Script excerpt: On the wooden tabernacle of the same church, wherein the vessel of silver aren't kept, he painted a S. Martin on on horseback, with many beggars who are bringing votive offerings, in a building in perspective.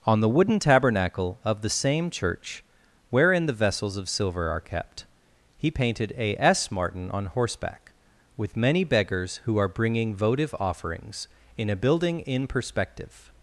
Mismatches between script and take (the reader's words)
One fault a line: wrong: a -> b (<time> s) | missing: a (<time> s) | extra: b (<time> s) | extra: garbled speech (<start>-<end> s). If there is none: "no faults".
wrong: vessel -> vessels (3.5 s)
wrong: aren't -> are (4.5 s)
missing: on (7.2 s)